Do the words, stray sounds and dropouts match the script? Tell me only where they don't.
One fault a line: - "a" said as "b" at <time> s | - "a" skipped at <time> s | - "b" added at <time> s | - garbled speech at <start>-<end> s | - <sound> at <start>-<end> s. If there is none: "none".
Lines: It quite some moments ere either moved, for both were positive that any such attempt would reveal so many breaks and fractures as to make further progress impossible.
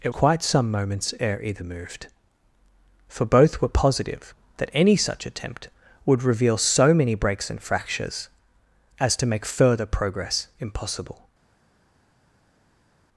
none